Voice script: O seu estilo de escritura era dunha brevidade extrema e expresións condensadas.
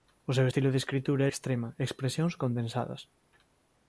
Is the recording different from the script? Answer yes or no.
yes